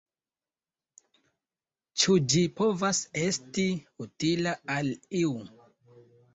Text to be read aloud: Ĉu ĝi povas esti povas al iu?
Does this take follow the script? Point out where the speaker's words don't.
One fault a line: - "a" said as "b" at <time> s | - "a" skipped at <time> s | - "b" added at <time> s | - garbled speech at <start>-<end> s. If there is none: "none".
- "povas" said as "utila" at 4.1 s